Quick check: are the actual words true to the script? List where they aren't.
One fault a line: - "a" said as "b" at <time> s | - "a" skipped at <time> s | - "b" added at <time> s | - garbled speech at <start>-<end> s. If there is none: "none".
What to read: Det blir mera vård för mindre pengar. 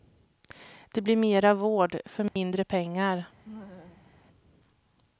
none